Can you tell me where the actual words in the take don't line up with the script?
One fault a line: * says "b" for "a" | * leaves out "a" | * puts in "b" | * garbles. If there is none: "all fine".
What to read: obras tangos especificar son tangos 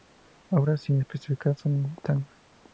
* says "sin" for "tangos"